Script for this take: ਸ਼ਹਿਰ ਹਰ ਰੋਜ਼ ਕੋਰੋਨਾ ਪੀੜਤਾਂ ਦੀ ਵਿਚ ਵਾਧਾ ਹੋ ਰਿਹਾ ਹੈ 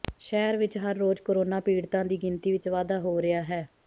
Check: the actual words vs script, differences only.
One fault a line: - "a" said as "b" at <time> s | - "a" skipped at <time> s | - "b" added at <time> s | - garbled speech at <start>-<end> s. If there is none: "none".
- "ਵਿਚ" added at 0.6 s
- "ਗਿਣਤੀ" added at 2.2 s